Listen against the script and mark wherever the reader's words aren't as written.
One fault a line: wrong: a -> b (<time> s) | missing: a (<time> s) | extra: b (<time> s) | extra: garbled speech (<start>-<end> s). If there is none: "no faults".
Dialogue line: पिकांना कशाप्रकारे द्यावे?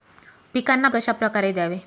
no faults